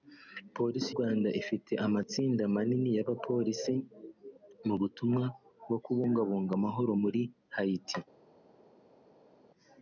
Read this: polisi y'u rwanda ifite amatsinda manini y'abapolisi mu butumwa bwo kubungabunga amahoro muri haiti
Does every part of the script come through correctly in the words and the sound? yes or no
no